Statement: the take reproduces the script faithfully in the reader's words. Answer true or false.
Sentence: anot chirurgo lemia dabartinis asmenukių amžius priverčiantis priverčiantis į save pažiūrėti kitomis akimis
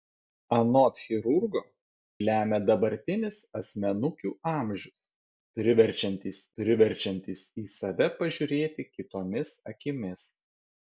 true